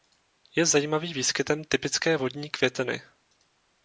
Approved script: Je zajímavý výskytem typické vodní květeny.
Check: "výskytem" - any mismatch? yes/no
no